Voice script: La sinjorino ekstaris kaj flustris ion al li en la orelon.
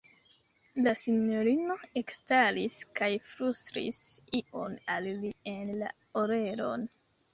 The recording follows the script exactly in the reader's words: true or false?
true